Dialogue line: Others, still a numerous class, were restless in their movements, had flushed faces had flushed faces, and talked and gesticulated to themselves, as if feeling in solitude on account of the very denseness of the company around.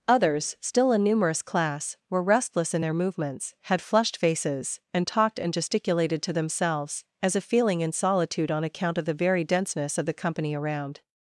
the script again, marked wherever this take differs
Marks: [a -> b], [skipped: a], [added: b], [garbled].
Others, still a numerous class, were restless in their movements, had flushed faces [skipped: had flushed faces,] and talked and gesticulated to themselves, as if feeling in solitude on account of the very denseness of the company around.